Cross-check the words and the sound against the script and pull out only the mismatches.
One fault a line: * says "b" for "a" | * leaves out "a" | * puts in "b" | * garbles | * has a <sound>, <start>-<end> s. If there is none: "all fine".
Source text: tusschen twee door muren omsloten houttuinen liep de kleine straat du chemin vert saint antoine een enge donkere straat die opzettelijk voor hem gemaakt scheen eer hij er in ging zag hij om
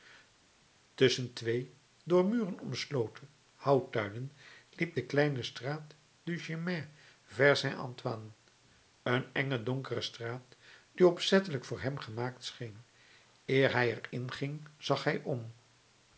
all fine